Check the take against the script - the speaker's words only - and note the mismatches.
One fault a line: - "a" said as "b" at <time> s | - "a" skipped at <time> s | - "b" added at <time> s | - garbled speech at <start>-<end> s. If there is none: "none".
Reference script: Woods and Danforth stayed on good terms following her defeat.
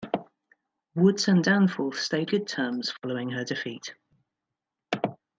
- "on" skipped at 2.3 s